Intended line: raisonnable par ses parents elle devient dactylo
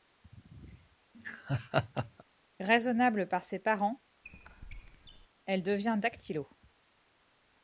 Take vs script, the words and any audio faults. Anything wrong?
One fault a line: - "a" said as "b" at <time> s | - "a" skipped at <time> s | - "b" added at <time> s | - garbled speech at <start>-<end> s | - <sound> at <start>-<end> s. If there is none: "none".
- laugh at 1.1-2.2 s
- squeak at 4.2-5.3 s